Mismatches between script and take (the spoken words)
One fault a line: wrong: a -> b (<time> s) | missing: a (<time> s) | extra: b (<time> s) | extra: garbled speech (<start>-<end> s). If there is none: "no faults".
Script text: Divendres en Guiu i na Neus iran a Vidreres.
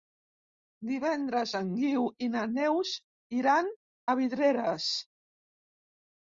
no faults